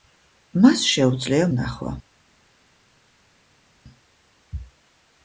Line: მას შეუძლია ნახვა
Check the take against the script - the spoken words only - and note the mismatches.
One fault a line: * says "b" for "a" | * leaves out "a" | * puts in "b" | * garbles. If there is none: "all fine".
all fine